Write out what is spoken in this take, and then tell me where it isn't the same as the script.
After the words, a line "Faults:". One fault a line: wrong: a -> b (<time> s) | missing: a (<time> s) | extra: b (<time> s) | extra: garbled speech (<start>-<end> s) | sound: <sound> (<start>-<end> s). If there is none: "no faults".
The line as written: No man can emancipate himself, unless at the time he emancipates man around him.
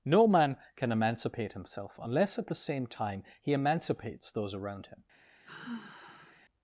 No man can emancipate himself, unless at the same time he emancipates those around him.
Faults:
extra: same (2.5 s)
wrong: man -> those (4.3 s)
sound: sigh (5.4-6.4 s)